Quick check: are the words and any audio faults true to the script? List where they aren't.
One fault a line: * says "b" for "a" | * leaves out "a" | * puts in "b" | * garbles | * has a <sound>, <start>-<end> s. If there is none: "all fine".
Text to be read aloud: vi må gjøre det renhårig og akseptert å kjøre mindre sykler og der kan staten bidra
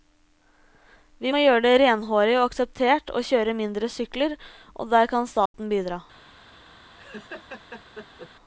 * has a dropout, 5.5-5.5 s
* has a laugh, 7.0-8.3 s